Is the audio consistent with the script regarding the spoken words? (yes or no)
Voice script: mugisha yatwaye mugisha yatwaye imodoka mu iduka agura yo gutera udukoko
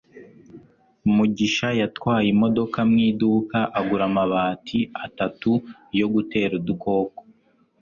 no